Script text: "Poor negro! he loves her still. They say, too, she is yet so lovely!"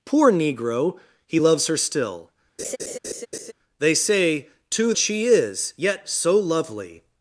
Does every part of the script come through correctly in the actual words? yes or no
yes